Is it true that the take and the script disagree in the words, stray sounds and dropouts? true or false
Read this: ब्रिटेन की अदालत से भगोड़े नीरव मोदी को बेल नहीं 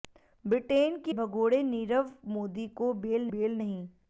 true